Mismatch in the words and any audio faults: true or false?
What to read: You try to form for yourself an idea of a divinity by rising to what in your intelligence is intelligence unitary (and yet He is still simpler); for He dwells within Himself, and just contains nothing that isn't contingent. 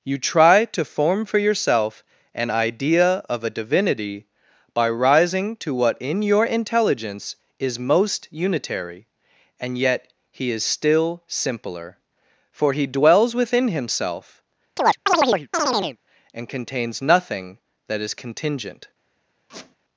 true